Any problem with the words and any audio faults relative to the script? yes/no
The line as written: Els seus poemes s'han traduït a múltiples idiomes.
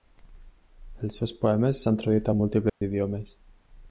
yes